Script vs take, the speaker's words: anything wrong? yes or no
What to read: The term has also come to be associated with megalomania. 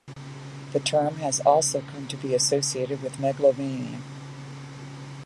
no